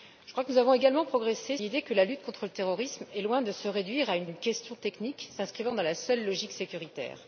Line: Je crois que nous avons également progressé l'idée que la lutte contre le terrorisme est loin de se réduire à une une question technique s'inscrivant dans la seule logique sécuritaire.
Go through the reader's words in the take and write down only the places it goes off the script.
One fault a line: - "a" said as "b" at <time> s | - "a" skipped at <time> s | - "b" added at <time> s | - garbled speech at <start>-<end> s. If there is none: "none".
none